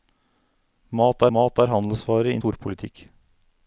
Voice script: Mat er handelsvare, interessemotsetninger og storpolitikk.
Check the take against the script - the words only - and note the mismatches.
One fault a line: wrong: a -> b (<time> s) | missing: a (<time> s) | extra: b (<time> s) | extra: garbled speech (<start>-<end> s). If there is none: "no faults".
extra: mat (1.4 s)
missing: interessemotsetninger og (2.3 s)